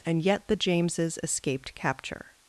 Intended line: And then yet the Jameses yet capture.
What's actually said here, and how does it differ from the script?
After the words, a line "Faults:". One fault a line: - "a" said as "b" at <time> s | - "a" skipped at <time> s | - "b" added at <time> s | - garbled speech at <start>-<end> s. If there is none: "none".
And yet the Jameses escaped capture.
Faults:
- "then" skipped at 0.2 s
- "yet" said as "escaped" at 1.2 s